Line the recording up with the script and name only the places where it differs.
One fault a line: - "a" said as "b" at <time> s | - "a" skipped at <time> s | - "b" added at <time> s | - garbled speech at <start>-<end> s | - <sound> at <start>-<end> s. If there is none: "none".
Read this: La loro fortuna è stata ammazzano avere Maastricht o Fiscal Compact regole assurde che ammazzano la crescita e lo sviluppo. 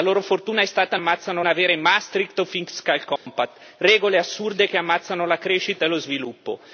- dropout at 3.2-3.3 s